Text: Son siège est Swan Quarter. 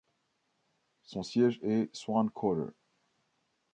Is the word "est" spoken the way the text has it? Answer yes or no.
yes